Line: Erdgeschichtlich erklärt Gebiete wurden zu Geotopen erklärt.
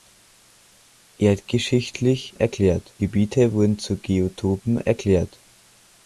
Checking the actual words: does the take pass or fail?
pass